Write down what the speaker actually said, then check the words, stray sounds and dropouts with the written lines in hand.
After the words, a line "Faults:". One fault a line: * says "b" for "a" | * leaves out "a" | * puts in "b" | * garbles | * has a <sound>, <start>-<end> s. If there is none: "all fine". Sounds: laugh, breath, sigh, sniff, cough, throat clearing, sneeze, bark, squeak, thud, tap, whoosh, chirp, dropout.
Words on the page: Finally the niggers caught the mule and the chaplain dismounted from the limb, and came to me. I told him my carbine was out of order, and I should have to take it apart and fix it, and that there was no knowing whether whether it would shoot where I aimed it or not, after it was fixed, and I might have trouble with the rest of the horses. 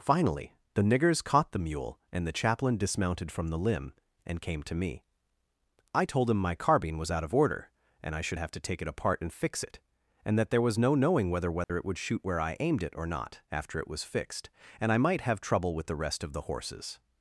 Finally the niggers caught the mule and the chaplain dismounted from the limb, and came to me. I told him my carbine was out of order, and I should have to take it apart and fix it, and that there was no knowing whether whether it would shoot where I aimed it or not, after it was fixed, and I might have trouble with the rest of the horses.
Faults:
* has a dropout, 11.6-11.7 s